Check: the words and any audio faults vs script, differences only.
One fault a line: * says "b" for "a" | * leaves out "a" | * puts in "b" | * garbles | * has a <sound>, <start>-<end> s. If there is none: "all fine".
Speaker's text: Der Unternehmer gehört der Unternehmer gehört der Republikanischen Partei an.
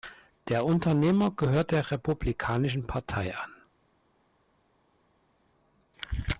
* leaves out "Unternehmer gehört der"